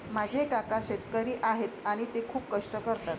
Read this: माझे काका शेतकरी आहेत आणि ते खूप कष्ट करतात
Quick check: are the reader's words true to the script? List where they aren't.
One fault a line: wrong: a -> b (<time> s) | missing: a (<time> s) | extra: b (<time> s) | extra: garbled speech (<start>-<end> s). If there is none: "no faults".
no faults